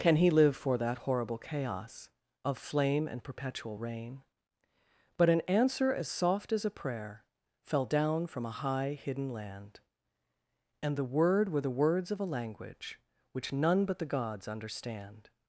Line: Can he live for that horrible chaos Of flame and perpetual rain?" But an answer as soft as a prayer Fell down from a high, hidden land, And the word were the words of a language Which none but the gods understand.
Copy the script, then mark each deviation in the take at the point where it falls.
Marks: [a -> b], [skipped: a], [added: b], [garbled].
Can he live for that horrible chaos Of flame and perpetual rain?" But an answer as soft as a prayer Fell down from a high, hidden land, And the word were the words of a language Which none but the gods understand.